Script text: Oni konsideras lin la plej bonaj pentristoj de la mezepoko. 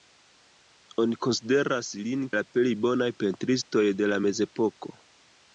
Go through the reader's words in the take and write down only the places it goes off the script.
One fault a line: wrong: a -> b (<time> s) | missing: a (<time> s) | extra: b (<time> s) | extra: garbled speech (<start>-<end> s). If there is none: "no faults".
no faults